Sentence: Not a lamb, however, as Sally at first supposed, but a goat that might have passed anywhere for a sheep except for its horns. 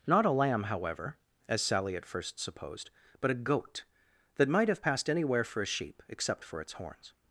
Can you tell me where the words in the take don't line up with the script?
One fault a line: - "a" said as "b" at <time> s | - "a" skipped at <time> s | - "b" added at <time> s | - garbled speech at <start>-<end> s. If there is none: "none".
none